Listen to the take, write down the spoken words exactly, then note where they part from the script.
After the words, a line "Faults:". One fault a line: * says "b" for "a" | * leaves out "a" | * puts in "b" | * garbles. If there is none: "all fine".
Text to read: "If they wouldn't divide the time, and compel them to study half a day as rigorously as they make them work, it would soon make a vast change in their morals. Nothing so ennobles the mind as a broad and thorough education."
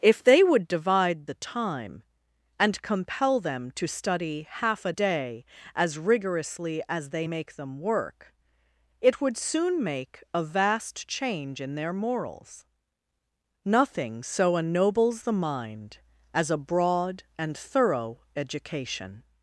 "If they would divide the time, and compel them to study half a day as rigorously as they make them work, it would soon make a vast change in their morals. Nothing so ennobles the mind as a broad and thorough education."
Faults:
* says "would" for "wouldn't"